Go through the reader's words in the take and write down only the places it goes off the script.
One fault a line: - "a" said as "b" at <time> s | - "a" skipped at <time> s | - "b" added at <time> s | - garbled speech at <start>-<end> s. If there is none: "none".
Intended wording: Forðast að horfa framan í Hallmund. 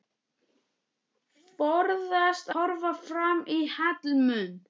- "að" skipped at 2.5 s